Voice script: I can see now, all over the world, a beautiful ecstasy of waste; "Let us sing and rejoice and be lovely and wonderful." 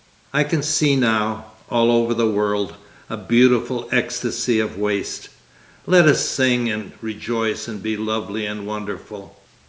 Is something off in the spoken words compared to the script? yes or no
no